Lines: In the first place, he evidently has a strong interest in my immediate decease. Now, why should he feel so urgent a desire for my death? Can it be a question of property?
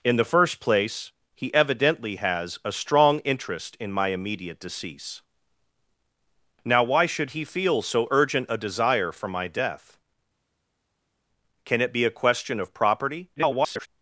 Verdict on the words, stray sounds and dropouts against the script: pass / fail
fail